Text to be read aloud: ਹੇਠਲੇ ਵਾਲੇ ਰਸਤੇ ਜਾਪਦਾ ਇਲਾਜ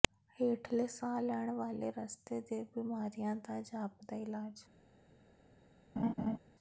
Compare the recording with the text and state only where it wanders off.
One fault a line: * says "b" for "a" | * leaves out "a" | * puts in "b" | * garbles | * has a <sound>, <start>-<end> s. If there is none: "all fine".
* puts in "ਸਾਹ ਲੈਣ"
* puts in "ਦੇ ਬਿਮਾਰੀਆਂ ਦਾ"
* has a laugh, 6.0-6.4 s